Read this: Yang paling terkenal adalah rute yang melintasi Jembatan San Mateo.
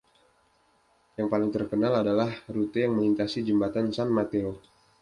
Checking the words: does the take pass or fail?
pass